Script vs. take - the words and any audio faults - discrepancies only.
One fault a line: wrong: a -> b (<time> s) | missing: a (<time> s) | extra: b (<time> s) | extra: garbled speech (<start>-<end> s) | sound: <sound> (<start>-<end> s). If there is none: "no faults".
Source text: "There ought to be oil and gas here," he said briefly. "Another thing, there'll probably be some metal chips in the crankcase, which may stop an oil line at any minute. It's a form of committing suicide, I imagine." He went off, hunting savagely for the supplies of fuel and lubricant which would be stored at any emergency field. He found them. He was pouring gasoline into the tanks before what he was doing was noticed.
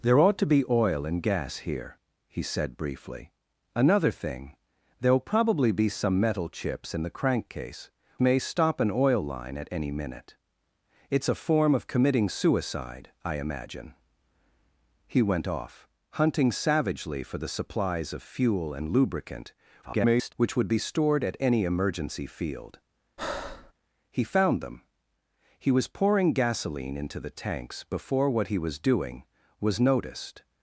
missing: which (7.9 s)
extra: garbled speech (19.8-20.3 s)
sound: breath (23.2-23.7 s)